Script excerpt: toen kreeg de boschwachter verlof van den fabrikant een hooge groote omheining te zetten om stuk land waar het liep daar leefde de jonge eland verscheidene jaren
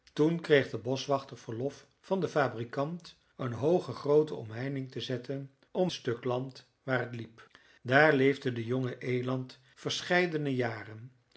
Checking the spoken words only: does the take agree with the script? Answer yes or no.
yes